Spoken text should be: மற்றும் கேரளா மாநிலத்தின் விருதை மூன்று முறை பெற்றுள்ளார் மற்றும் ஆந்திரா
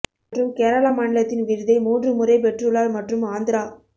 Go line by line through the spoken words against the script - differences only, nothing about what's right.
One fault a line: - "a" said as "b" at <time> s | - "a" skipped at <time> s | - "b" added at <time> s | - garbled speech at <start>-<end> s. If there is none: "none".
none